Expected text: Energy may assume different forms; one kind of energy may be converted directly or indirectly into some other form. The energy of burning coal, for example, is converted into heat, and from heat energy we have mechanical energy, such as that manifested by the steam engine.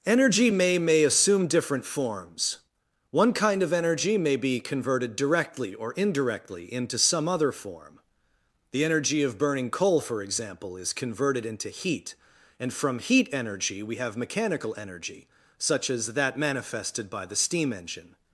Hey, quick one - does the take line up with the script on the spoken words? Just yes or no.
no